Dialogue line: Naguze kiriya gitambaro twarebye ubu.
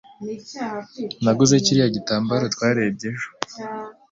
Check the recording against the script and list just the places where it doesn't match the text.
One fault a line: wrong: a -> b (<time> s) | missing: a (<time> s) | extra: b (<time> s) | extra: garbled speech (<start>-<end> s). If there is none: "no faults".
wrong: ubu -> ejo (3.1 s)